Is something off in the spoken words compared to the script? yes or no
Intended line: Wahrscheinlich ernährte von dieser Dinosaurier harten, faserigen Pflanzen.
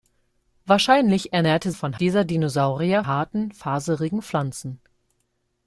no